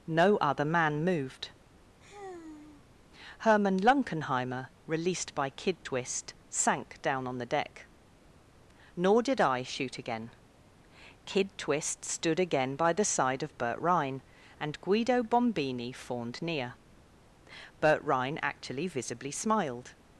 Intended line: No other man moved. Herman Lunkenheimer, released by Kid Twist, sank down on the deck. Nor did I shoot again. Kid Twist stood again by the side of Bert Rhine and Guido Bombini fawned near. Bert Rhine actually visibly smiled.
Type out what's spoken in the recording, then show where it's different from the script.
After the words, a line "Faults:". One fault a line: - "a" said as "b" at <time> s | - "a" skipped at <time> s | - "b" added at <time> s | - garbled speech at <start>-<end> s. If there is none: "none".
No other man moved. Herman Lunkenheimer, released by Kid Twist, sank down on the deck. Nor did I shoot again. Kid Twist stood again by the side of Bert Rhine and Guido Bombini fawned near. Bert Rhine actually visibly smiled.
Faults:
none